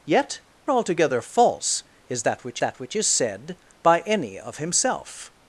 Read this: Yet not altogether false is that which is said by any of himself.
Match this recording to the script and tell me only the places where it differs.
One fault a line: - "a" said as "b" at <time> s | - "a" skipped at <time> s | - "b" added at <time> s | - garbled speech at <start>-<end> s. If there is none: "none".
- "not" skipped at 0.4 s
- "that which" added at 2.6 s